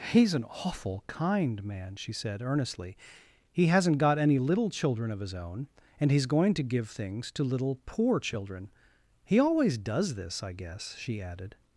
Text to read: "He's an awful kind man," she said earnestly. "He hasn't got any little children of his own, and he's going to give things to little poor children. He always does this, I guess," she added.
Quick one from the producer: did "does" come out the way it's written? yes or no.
yes